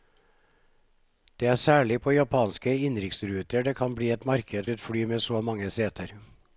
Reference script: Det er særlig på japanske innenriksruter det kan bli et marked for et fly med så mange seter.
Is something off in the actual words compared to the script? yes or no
yes